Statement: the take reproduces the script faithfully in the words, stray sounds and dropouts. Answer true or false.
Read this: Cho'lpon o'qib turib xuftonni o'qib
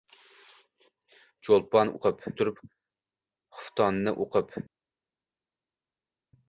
true